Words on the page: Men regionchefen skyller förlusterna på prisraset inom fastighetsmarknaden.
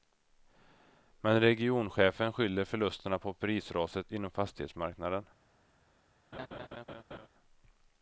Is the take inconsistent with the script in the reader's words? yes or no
no